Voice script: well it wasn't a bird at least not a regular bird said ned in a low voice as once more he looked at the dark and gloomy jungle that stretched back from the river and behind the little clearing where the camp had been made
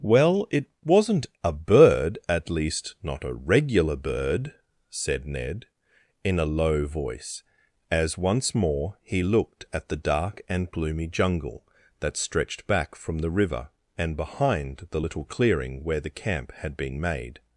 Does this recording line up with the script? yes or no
yes